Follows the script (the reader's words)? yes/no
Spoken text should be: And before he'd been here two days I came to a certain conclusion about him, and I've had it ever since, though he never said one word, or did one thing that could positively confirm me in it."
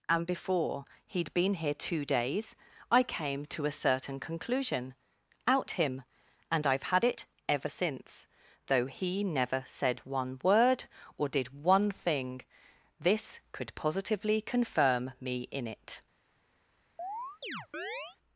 no